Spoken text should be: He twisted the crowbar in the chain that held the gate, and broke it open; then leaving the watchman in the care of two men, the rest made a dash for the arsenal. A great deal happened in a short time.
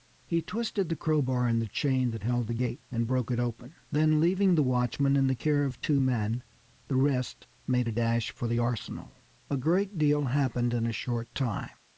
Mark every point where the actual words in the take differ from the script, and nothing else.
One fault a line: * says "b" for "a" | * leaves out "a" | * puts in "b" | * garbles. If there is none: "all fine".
all fine